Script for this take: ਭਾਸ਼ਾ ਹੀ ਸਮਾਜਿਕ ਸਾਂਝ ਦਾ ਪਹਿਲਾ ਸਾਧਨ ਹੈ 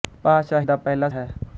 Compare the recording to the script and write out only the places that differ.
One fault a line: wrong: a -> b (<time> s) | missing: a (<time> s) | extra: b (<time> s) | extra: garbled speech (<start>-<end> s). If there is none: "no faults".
missing: ਹੀ ਸਮਾਜਿਕ ਸਾਂਝ (0.6 s)
missing: ਸਾਧਨ (1.1 s)